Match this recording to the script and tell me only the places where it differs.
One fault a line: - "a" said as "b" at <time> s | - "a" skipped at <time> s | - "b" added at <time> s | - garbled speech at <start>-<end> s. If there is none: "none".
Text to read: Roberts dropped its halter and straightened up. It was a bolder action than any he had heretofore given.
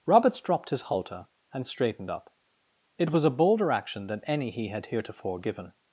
- "its" said as "his" at 0.7 s